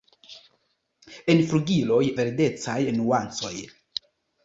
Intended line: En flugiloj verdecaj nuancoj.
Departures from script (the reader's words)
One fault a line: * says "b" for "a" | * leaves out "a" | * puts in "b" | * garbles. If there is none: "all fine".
all fine